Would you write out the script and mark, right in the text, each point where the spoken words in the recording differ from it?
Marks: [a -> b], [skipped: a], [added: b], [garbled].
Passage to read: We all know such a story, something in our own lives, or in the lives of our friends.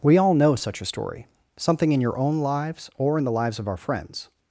We all know such a story, something in [our -> your] own lives, or in the lives of our friends.